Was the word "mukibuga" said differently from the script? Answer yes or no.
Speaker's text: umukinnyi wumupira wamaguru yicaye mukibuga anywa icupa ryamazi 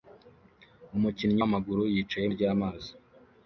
yes